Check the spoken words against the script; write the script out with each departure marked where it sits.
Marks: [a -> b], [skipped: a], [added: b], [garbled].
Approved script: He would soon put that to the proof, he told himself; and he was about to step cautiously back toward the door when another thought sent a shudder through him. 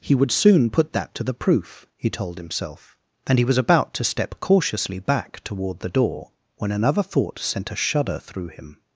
He would soon put that to the proof, he told himself; and he was about to step cautiously back toward the door when another thought sent a shudder through him.